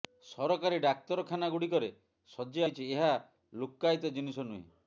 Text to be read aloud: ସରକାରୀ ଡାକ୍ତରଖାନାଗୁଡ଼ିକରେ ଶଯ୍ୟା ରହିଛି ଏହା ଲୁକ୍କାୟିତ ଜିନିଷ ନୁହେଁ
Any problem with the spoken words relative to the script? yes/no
no